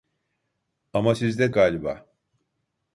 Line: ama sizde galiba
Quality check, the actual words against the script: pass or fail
pass